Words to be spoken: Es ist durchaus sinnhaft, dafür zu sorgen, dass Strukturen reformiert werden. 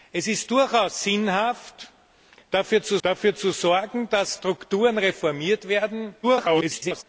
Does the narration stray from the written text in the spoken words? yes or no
yes